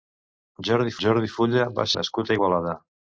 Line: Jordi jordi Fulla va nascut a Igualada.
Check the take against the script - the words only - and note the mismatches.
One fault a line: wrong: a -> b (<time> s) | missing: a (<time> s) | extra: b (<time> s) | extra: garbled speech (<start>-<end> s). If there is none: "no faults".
no faults